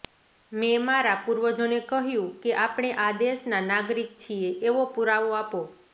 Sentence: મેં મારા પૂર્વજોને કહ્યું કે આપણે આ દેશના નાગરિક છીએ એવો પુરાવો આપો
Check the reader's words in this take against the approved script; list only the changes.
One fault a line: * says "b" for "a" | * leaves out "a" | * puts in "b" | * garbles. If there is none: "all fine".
all fine